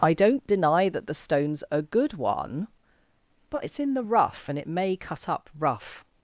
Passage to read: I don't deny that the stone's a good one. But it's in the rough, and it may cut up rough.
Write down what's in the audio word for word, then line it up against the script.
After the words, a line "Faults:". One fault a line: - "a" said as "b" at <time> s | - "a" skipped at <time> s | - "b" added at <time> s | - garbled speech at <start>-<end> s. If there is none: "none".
I don't deny that the stone's a good one. But it's in the rough, and it may cut up rough.
Faults:
none